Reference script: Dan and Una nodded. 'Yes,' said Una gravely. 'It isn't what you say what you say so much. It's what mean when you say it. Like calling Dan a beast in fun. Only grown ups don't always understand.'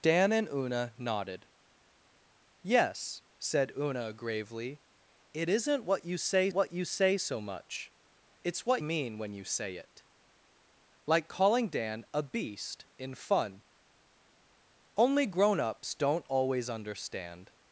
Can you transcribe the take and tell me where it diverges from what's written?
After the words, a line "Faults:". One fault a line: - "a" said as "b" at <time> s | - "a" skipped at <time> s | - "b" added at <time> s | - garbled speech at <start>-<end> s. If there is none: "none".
Dan and Una nodded. 'Yes,' said Una gravely. 'It isn't what you say what you say so much. It's what mean when you say it. Like calling Dan a beast in fun. Only grown ups don't always understand.'
Faults:
none